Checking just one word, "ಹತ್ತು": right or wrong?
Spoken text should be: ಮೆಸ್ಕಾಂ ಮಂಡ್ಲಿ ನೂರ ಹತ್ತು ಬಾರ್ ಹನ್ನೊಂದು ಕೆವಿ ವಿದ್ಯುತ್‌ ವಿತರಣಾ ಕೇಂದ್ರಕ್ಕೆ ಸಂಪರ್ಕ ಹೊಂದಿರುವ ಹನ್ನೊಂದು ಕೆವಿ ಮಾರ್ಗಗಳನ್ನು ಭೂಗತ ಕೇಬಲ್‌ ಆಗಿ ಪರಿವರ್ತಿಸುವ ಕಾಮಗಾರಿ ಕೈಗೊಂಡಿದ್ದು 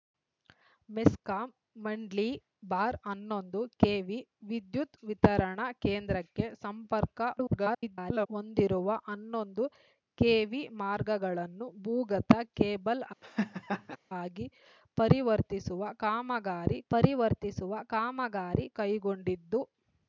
wrong